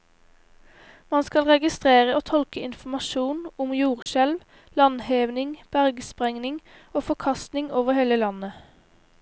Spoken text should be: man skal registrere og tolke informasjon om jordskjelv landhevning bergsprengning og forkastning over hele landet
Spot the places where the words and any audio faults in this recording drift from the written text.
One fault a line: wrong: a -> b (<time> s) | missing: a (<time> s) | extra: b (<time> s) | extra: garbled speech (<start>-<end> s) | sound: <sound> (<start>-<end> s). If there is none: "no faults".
sound: dropout (4.0-4.1 s)